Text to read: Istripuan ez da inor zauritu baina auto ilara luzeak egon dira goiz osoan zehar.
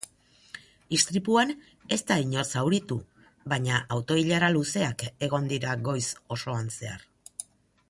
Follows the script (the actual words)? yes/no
yes